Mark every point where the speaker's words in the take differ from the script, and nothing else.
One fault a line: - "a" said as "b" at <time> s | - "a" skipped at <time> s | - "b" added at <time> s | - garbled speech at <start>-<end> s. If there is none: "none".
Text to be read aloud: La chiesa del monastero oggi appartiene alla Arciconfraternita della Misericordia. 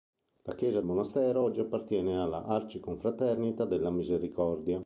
- "del" skipped at 0.8 s